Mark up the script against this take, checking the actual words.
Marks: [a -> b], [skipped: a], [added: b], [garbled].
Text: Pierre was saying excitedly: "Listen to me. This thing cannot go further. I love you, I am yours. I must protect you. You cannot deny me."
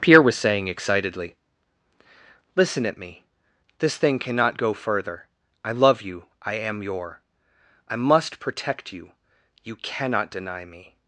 Pierre was saying excitedly: "Listen [to -> at] me. This thing cannot go further. I love you, I am [yours. -> your] I must protect you. You cannot deny me."